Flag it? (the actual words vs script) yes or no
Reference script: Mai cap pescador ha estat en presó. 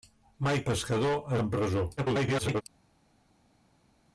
yes